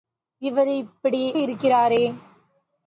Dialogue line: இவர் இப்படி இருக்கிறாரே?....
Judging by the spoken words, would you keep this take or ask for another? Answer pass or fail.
pass